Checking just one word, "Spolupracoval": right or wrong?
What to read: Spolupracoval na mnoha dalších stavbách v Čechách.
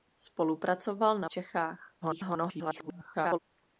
right